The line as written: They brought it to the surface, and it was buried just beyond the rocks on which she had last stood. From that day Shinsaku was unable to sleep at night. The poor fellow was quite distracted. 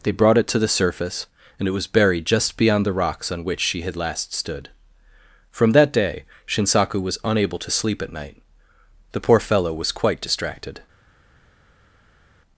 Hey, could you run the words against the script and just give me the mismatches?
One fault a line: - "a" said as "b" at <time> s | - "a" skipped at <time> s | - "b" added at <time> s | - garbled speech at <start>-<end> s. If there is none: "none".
none